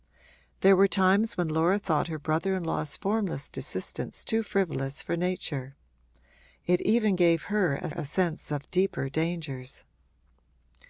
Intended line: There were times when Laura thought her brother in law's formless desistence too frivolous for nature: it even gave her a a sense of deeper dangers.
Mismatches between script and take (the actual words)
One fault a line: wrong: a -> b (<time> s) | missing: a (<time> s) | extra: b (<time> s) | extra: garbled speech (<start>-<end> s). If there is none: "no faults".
no faults